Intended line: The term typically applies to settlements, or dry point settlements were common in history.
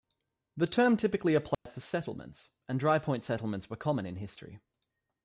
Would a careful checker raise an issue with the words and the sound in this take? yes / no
yes